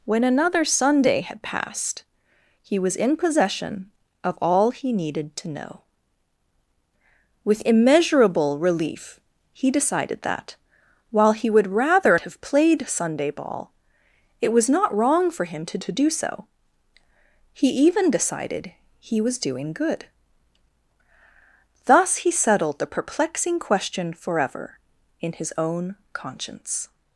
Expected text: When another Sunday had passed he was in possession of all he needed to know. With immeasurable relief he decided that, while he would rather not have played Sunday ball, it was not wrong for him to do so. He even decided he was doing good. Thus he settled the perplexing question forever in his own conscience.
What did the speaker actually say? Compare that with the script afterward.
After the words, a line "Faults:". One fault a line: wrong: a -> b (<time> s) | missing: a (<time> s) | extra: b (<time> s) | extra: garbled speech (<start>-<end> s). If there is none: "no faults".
When another Sunday had passed he was in possession of all he needed to know. With immeasurable relief he decided that, while he would rather have played Sunday ball, it was not wrong for him to to do so. He even decided he was doing good. Thus he settled the perplexing question forever in his own conscience.
Faults:
missing: not (12.2 s)
extra: to (15.8 s)